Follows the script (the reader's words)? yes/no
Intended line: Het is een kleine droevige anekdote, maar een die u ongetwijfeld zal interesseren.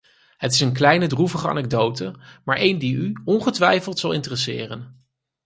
yes